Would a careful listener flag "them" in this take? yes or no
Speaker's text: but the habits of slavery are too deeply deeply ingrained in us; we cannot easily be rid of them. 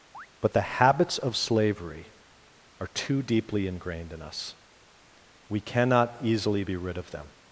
no